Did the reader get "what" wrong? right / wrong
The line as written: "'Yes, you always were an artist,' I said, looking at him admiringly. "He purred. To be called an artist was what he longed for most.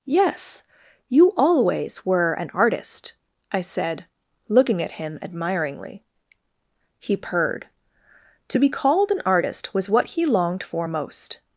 right